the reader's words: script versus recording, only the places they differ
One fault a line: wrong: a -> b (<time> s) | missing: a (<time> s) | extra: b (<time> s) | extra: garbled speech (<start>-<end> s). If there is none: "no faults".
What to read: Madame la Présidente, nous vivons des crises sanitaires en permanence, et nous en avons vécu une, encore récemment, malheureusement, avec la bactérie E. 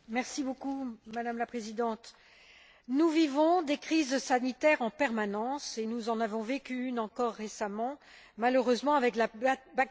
no faults